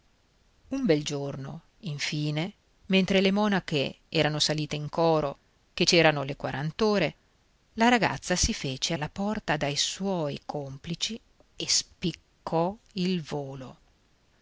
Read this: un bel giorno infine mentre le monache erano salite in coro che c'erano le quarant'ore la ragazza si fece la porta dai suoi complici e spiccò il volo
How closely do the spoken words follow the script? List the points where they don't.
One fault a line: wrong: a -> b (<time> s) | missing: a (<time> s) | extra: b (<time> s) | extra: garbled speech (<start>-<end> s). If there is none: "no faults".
no faults